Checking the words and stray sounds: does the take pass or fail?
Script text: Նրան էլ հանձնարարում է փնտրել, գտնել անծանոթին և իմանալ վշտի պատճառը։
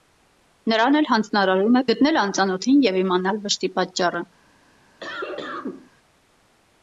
fail